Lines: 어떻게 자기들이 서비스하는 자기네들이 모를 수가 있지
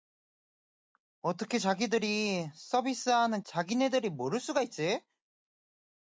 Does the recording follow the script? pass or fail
pass